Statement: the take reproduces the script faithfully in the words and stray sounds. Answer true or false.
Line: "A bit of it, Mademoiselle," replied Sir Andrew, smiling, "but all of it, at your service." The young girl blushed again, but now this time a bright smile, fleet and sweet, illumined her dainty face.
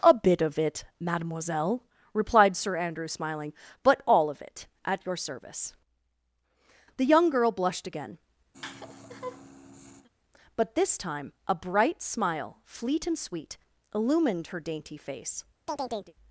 false